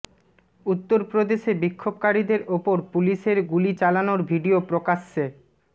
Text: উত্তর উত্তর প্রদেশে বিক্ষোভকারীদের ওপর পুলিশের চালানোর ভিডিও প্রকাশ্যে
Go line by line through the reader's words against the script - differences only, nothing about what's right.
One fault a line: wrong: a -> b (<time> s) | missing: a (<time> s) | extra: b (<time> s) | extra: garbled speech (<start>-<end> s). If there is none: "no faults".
missing: উত্তর (1.0 s)
extra: গুলি (3.5 s)